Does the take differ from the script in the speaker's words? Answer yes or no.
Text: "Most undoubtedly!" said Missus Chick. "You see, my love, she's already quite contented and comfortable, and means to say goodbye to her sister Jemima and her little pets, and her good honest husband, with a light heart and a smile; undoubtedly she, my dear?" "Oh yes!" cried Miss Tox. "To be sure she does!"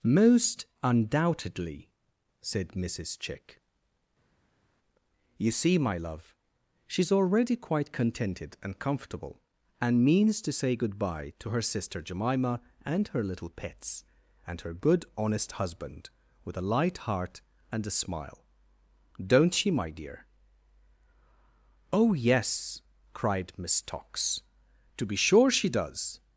yes